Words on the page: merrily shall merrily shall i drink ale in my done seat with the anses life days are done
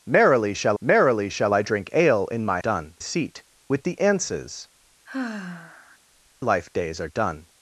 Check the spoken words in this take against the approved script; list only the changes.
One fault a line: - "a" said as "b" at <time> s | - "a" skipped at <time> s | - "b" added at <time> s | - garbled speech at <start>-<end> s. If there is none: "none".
none